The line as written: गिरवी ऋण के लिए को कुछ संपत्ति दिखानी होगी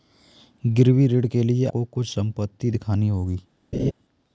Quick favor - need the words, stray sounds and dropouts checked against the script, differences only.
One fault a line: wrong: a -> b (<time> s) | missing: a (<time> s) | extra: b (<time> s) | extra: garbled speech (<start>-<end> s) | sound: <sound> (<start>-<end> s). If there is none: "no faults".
sound: laugh (3.7-3.9 s)